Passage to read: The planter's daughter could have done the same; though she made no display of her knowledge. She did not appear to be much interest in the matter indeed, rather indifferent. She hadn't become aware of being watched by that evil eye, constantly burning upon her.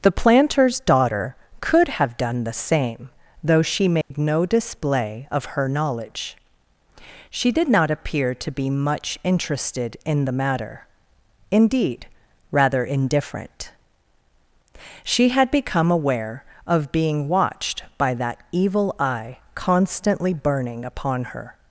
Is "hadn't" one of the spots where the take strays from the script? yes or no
yes